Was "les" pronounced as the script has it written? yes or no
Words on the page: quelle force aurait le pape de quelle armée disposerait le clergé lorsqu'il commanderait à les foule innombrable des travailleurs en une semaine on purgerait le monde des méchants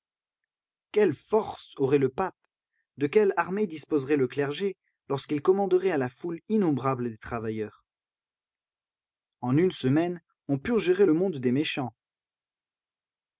no